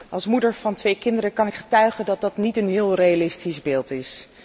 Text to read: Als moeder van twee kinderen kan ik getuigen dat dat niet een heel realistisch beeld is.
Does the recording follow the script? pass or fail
pass